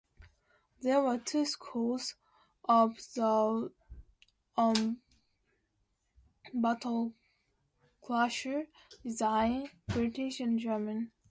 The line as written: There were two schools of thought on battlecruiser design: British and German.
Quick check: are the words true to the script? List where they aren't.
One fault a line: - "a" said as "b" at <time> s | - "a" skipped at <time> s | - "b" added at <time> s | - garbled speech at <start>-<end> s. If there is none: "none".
none